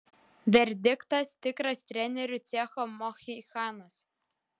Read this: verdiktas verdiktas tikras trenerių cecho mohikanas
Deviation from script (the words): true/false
true